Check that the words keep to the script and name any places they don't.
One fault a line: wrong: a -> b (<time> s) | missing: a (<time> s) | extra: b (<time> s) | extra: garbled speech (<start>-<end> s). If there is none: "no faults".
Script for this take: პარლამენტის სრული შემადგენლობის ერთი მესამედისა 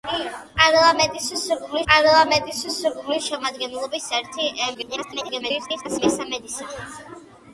extra: პარლამენტის სრული (1.9 s)
extra: garbled speech (4.7-6.0 s)